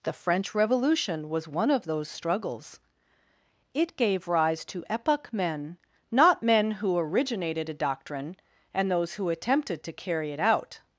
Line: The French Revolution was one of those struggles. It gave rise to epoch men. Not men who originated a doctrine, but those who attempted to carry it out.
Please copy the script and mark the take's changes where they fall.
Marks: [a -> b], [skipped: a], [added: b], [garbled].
The French Revolution was one of those struggles. It gave rise to epoch men. Not men who originated a doctrine, [but -> and] those who attempted to carry it out.